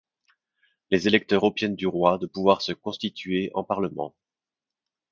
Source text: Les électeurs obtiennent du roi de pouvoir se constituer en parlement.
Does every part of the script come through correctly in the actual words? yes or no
yes